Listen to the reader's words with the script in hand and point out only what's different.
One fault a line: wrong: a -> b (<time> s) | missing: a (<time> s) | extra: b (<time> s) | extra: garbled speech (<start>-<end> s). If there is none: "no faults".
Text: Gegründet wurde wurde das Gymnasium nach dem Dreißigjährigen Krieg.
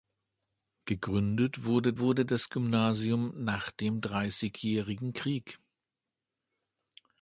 no faults